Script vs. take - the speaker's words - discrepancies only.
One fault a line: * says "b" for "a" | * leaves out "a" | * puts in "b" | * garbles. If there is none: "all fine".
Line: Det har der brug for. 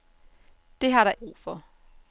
all fine